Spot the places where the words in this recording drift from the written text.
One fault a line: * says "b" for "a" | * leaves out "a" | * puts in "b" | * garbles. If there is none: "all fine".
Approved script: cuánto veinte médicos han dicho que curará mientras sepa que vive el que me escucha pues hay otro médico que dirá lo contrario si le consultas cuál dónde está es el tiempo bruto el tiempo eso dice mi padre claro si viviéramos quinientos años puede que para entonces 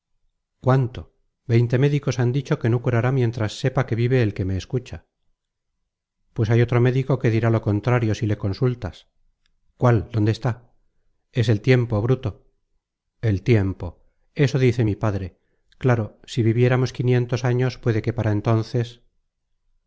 * puts in "no"